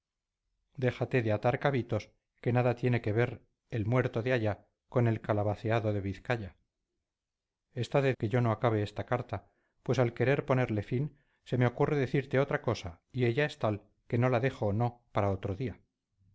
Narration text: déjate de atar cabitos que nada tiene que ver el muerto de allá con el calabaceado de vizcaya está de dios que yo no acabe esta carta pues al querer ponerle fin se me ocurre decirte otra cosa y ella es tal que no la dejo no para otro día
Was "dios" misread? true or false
true